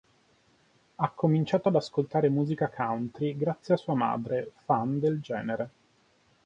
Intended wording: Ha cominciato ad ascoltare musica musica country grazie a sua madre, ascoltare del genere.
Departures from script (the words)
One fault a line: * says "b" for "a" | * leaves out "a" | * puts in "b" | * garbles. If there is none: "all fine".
* leaves out "musica"
* says "fan" for "ascoltare"